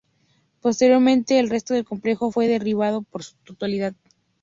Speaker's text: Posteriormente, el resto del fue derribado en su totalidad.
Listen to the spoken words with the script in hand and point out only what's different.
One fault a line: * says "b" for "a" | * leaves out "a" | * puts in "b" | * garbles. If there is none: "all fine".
* puts in "complejo"